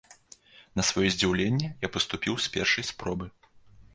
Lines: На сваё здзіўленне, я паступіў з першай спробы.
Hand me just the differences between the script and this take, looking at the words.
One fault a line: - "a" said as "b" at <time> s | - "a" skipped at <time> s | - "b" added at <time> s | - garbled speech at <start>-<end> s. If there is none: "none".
none